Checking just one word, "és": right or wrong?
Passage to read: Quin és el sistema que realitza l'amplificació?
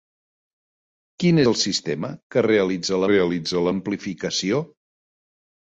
wrong